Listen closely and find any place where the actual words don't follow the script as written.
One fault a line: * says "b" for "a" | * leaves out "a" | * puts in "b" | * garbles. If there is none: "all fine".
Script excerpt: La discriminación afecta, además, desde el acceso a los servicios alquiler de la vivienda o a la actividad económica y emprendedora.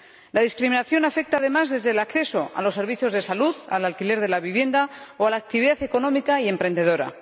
* puts in "de salud al"